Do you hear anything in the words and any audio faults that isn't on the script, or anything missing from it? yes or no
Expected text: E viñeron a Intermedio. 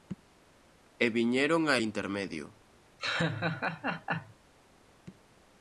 yes